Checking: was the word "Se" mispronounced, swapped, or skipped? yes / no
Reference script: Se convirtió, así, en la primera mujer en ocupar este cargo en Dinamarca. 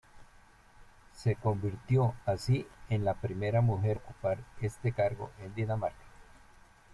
no